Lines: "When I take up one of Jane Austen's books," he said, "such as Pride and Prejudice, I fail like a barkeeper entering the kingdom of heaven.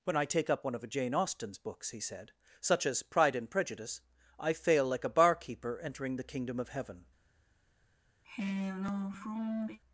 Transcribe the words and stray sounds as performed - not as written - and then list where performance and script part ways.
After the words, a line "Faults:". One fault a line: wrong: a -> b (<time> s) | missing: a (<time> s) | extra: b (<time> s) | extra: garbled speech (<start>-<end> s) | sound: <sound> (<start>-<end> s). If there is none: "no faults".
"When I take up one of Jane Austen's books," he said, "such as Pride and Prejudice, I fail like a barkeeper entering the kingdom of heaven.
Faults:
sound: sigh (8.2-9.8 s)